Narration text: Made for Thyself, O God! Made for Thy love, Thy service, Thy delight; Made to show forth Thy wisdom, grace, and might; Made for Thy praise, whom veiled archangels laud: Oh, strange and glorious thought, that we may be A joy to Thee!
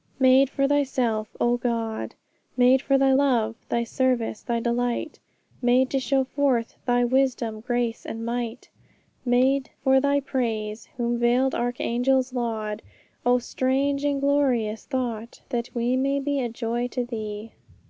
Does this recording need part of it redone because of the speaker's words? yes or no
no